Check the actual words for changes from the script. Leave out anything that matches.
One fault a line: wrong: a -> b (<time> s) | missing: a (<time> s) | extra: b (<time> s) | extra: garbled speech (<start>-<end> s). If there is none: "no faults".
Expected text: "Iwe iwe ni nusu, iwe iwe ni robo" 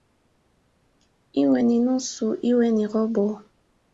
missing: iwe (1.6 s)
missing: iwe (2.7 s)